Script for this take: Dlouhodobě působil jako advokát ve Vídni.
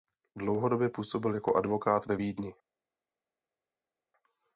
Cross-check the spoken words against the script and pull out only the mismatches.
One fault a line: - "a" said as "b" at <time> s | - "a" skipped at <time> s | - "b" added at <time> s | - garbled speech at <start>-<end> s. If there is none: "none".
none